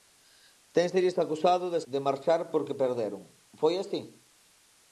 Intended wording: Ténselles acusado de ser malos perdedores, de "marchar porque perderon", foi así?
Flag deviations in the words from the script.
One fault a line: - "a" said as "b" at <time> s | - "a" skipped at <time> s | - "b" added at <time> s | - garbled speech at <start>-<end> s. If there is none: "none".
- "ser malos perdedores" skipped at 1.8 s